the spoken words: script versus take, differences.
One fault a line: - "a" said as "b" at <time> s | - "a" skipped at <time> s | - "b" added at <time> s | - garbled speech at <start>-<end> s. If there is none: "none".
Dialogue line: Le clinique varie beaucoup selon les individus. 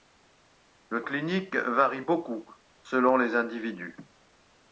none